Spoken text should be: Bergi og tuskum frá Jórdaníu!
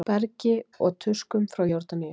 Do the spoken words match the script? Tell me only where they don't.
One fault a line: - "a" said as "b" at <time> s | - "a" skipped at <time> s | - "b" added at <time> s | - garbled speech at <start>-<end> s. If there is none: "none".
none